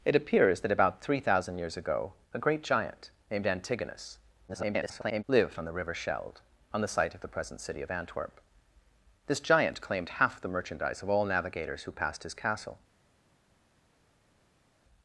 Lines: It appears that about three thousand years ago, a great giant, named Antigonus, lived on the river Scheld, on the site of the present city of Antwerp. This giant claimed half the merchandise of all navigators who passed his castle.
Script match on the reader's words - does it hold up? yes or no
no